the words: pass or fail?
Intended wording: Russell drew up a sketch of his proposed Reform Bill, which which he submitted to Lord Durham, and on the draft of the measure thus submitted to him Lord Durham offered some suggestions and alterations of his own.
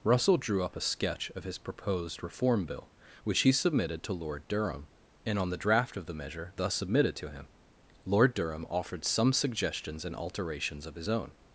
fail